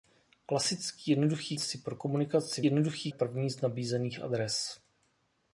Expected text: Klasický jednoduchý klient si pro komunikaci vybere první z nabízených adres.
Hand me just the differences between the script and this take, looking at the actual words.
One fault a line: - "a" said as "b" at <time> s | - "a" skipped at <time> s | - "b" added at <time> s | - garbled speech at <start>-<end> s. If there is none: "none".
- "klient" skipped at 1.6 s
- "vybere" said as "jednoduchý" at 2.7 s